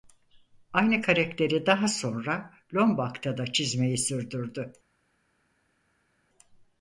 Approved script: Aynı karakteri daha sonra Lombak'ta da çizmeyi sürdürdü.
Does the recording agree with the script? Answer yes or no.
yes